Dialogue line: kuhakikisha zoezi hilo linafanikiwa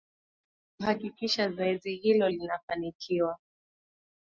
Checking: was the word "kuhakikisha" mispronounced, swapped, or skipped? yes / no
no